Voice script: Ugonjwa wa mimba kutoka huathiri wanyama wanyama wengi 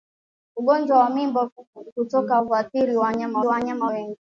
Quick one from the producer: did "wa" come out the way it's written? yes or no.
yes